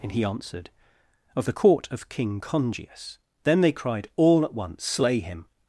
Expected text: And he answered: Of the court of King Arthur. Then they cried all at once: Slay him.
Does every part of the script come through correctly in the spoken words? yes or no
no